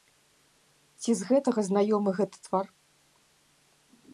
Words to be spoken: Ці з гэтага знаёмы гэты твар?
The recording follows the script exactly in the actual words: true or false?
true